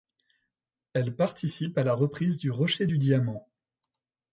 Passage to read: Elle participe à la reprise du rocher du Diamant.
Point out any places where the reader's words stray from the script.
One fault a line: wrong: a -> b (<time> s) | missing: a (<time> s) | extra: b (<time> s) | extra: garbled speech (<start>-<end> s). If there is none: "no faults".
no faults